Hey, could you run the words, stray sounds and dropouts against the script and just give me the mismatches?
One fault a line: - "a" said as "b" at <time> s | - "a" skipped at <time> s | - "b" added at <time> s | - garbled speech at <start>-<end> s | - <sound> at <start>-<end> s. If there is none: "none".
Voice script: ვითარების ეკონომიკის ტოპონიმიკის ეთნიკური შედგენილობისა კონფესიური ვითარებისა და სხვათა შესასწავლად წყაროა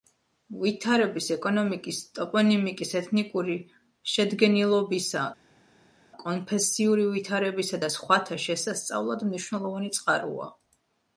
- "მნიშვნელოვანი" added at 9.3 s